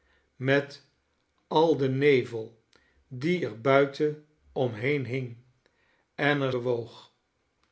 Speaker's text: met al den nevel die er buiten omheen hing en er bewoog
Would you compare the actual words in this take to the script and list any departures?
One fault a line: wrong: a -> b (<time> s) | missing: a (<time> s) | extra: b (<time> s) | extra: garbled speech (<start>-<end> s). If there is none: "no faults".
no faults